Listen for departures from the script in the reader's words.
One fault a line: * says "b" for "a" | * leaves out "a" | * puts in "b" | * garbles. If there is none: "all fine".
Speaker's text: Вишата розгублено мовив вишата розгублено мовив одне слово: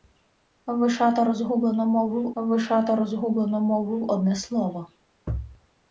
all fine